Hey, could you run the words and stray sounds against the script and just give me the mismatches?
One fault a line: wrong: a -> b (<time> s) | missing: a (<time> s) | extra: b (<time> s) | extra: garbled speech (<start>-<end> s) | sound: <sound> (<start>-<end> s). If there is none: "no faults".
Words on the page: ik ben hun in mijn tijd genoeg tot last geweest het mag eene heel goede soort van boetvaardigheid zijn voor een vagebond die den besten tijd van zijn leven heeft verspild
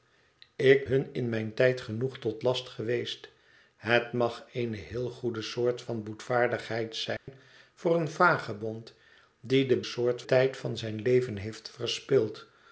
missing: ben (0.9 s)
sound: dropout (7.2-7.3 s)
wrong: besten -> soort (9.8 s)